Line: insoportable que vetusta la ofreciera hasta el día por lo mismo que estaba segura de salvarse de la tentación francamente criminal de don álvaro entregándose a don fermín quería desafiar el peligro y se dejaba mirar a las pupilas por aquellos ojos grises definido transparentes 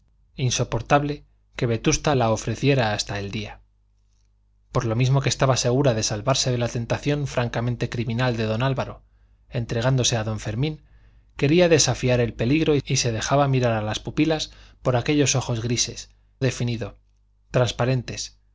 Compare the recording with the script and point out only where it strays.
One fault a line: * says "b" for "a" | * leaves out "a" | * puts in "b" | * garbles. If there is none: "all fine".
all fine